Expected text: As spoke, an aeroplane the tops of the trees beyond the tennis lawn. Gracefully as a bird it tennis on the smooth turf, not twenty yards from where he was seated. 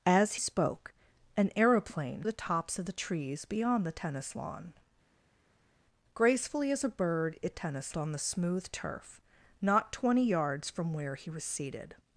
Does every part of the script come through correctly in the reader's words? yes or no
yes